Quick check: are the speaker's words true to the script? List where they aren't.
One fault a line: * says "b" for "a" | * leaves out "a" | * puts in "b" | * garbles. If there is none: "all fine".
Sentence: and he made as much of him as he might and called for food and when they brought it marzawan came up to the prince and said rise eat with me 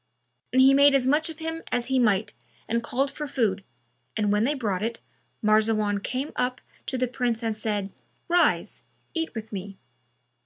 all fine